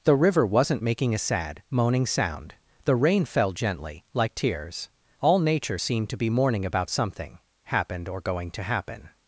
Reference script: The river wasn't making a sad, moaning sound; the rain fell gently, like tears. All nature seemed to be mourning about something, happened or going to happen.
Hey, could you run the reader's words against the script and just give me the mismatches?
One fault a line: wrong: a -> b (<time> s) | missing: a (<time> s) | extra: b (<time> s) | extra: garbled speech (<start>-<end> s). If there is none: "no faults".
no faults